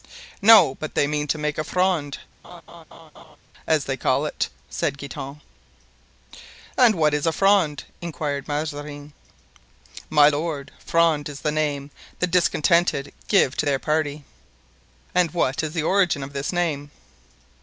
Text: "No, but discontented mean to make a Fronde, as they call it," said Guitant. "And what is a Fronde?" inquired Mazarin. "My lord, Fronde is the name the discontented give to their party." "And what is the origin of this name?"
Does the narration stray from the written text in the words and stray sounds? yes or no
yes